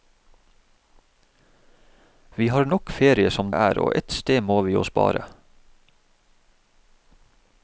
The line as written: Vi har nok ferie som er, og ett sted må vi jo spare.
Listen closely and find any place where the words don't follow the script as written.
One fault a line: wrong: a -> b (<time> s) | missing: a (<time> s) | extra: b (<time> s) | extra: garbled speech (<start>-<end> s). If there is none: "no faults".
no faults